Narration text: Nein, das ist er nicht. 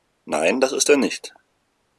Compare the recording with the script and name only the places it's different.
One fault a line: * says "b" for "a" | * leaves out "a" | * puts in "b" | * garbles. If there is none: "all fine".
all fine